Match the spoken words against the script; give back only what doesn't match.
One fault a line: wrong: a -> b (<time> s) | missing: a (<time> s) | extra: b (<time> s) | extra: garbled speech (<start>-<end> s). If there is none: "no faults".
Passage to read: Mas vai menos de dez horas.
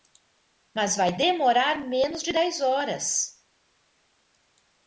extra: demorar (1.2 s)